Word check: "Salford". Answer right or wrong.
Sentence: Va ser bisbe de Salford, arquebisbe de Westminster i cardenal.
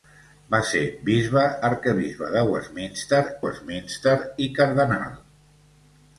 wrong